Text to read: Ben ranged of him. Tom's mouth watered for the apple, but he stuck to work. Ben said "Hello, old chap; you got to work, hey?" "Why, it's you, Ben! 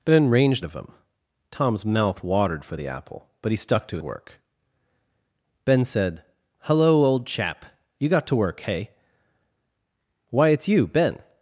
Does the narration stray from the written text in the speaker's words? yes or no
no